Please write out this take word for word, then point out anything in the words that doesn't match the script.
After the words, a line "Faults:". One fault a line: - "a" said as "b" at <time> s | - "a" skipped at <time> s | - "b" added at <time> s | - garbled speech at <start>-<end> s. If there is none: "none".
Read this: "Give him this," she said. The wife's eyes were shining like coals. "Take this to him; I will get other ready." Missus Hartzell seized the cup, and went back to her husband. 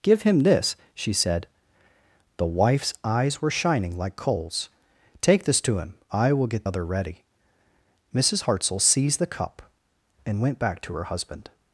"Give him this," she said. The wife's eyes were shining like coals. "Take this to him; I will get other ready." Missus Hartzell seized the cup, and went back to her husband.
Faults:
none